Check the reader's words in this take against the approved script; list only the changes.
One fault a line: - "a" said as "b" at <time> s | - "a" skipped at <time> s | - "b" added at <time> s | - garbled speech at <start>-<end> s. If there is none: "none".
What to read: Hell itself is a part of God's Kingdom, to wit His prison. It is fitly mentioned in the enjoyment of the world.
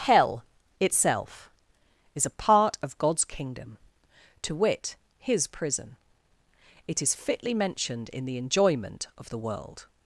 none